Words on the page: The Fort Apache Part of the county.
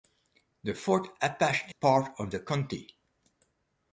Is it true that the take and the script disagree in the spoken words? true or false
false